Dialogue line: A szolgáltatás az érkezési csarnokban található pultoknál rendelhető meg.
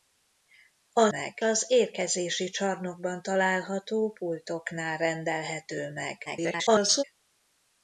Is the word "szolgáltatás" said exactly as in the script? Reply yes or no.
no